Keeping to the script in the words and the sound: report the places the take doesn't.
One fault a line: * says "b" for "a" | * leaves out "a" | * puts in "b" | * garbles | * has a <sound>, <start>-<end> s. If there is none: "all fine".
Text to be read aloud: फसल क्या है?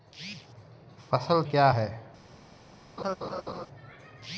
* has a laugh, 3.0-3.7 s